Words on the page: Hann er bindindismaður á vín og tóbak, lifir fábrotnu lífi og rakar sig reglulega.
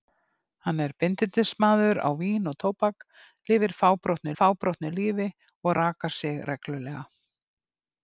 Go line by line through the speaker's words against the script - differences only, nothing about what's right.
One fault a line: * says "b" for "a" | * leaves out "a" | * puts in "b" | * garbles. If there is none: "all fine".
* puts in "fábrotnu"